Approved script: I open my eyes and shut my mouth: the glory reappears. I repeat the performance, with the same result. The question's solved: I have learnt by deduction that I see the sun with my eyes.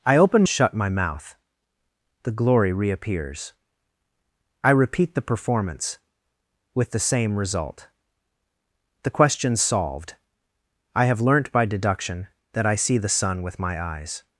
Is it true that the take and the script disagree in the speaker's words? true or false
true